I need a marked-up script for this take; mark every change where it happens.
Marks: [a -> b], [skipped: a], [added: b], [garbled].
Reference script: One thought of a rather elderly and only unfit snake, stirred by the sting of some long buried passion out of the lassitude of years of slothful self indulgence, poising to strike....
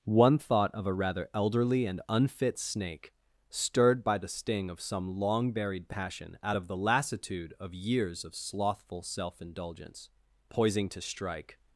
One thought of a rather elderly and [skipped: only] unfit snake, stirred by the sting of some long buried passion out of the lassitude of years of slothful self indulgence, poising to strike....